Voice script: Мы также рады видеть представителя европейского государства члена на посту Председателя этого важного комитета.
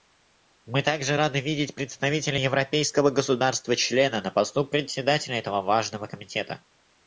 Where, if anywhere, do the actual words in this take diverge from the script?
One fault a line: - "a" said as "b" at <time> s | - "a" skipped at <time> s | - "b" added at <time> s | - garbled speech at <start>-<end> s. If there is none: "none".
none